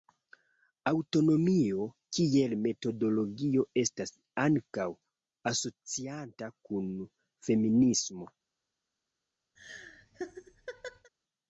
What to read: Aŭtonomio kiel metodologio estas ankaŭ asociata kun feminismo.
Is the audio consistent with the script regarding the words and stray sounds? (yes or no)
no